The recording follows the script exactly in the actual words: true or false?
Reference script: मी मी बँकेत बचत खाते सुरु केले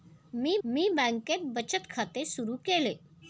true